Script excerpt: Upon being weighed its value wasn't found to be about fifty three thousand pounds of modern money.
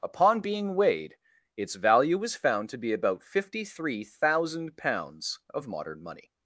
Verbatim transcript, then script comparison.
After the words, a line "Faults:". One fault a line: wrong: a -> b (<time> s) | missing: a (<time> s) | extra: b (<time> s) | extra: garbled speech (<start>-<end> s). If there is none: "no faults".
Upon being weighed its value was found to be about fifty three thousand pounds of modern money.
Faults:
wrong: wasn't -> was (2.2 s)